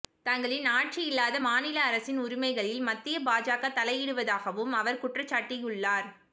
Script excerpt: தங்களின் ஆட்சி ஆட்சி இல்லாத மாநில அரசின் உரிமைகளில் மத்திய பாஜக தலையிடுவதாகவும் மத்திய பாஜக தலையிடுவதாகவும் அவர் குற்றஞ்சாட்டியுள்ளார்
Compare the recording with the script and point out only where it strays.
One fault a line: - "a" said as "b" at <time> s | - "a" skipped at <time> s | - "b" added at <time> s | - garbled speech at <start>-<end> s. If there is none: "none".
- "ஆட்சி" skipped at 1.0 s
- "மத்திய பாஜக தலையிடுவதாகவும்" skipped at 4.7 s